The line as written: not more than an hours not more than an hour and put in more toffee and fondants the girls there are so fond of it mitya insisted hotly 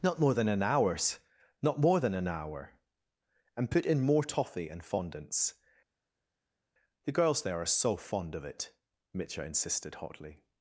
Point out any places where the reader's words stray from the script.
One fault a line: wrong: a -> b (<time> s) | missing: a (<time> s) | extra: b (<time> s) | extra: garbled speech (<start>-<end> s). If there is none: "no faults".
no faults